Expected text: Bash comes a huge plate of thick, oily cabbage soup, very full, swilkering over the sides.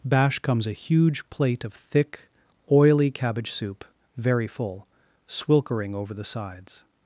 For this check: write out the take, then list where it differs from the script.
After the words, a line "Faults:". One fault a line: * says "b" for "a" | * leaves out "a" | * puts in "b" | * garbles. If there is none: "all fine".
Bash comes a huge plate of thick, oily cabbage soup, very full, swilkering over the sides.
Faults:
all fine